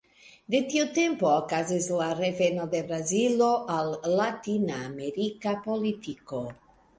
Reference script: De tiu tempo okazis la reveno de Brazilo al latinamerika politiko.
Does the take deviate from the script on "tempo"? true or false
false